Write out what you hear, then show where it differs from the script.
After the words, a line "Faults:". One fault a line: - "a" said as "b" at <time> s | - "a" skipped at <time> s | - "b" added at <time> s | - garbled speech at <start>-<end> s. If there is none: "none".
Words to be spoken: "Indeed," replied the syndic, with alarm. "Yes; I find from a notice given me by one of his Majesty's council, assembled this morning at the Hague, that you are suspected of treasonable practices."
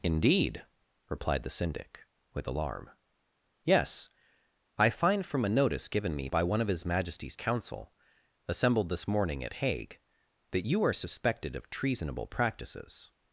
"Indeed," replied the syndic, with alarm. "Yes; I find from a notice given me by one of his Majesty's council, assembled this morning at Hague, that you are suspected of treasonable practices."
Faults:
- "the" skipped at 9.5 s